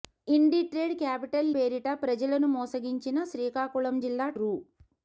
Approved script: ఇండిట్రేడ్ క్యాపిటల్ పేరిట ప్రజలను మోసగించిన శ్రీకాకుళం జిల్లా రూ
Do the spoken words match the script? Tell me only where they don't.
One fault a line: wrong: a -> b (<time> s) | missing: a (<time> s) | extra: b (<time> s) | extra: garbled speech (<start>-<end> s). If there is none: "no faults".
no faults